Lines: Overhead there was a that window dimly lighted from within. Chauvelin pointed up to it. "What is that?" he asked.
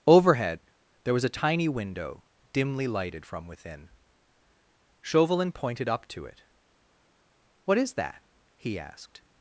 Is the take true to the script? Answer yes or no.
no